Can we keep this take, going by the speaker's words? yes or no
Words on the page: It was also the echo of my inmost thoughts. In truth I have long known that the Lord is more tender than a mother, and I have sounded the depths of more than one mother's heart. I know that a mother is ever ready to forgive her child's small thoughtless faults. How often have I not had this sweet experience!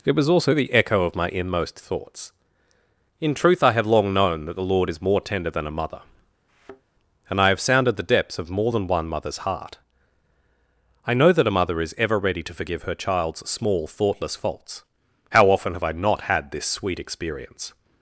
yes